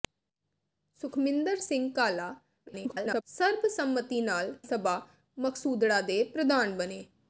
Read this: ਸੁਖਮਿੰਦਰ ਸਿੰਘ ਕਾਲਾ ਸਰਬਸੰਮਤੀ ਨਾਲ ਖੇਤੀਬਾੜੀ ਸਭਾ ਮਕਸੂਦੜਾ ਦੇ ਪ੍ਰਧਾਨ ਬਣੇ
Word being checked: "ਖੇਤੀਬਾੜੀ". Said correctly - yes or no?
no